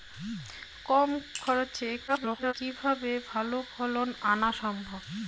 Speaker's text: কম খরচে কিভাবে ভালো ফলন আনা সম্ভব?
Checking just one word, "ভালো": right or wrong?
right